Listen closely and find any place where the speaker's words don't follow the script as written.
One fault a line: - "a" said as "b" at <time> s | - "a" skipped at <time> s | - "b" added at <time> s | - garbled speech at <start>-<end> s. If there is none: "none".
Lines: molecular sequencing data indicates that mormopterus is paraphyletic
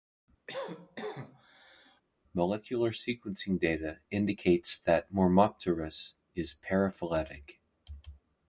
none